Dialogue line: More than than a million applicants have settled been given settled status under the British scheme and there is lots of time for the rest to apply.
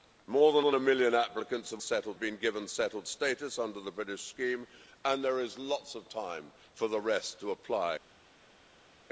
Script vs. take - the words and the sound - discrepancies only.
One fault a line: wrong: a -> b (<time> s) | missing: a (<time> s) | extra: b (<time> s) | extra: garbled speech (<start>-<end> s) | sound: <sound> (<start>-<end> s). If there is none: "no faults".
no faults